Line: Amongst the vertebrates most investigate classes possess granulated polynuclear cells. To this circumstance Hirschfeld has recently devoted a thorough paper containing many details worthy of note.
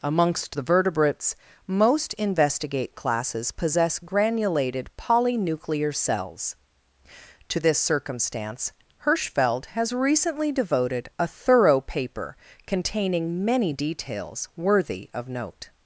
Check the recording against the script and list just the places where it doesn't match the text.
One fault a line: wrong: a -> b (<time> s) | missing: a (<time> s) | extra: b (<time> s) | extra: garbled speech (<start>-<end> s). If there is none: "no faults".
no faults